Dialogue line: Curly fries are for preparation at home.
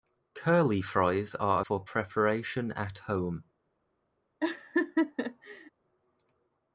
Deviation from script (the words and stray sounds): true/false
true